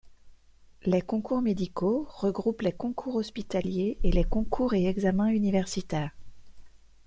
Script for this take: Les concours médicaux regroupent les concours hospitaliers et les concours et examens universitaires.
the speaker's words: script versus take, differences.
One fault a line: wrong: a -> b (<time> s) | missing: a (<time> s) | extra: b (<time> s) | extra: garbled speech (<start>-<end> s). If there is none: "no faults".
no faults